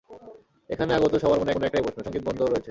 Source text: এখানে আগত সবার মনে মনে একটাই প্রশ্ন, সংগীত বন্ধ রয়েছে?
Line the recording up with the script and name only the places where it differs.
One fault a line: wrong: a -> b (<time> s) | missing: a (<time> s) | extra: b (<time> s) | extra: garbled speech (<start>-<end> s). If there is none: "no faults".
no faults